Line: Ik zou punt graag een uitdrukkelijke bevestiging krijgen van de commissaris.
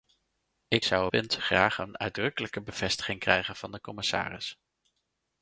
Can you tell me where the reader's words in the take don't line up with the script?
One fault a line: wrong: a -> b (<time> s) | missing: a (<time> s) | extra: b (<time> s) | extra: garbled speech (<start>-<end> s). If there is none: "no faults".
no faults